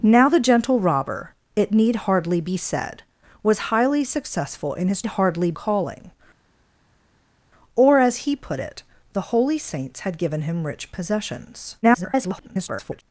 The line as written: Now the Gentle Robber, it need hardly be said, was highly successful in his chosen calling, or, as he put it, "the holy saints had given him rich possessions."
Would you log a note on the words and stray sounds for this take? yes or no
yes